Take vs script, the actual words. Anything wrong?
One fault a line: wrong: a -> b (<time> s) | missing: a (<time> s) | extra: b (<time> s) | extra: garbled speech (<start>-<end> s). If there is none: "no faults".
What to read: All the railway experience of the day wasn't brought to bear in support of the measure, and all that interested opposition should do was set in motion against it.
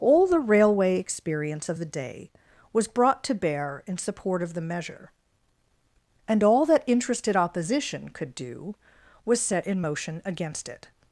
wrong: wasn't -> was (2.7 s)
wrong: should -> could (8.1 s)